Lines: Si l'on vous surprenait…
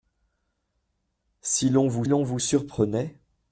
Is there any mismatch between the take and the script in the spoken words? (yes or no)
yes